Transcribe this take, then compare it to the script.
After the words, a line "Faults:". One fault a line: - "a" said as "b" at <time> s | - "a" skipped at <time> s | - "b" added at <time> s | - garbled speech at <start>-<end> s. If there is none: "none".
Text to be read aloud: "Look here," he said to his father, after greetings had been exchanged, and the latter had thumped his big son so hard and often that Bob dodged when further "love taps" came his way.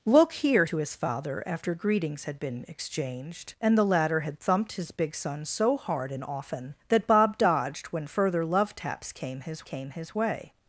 "Look here," to his father, after greetings had been exchanged, and the latter had thumped his big son so hard and often that Bob dodged when further "love taps" came his came his way.
Faults:
- "he said" skipped at 0.7 s
- "came his" added at 9.6 s